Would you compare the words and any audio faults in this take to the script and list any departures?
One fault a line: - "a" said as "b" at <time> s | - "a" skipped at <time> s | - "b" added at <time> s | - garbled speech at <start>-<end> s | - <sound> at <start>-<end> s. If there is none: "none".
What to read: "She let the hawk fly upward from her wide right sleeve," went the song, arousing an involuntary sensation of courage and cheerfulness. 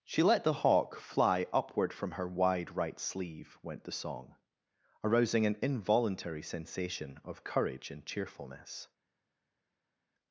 none